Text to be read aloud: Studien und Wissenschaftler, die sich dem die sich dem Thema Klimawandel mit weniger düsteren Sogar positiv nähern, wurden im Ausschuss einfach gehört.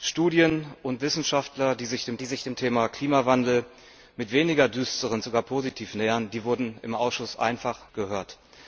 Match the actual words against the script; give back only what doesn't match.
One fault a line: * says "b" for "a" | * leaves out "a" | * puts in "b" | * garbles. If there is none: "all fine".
all fine